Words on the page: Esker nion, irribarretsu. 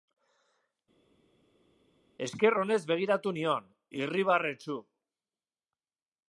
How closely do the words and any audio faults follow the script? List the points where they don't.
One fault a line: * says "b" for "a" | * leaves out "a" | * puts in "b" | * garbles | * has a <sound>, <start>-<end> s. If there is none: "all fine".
* puts in "onez begiratu"